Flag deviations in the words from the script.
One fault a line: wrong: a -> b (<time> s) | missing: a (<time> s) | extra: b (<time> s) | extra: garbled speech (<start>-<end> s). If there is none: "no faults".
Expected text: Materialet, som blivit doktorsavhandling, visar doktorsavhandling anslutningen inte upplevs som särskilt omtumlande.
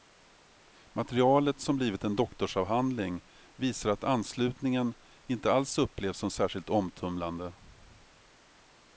extra: en (2.0 s)
wrong: doktorsavhandling -> att (3.9 s)
extra: alls (5.5 s)